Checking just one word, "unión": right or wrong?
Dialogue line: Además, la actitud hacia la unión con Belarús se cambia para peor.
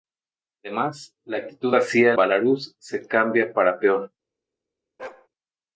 wrong